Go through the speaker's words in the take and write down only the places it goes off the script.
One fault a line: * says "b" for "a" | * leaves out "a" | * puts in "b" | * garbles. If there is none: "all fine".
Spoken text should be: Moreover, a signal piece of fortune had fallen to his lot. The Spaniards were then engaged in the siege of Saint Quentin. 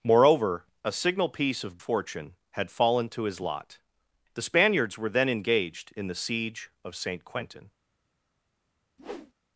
all fine